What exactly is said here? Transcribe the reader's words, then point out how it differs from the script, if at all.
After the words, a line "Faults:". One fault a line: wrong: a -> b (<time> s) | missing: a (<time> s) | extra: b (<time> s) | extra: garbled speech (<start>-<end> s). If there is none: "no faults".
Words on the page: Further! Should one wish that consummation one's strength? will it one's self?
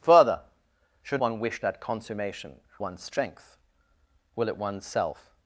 Further! Should one wish that consummation one's strength? will it one's self?
Faults:
no faults